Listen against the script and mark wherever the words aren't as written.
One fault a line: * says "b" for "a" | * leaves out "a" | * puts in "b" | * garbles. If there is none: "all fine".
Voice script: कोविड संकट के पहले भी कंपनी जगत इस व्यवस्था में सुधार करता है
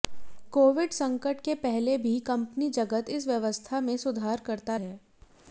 all fine